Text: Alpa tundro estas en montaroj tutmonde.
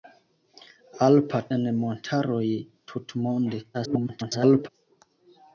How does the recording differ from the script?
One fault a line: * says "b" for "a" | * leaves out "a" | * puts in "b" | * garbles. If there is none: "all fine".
* leaves out "tundro estas"
* garbles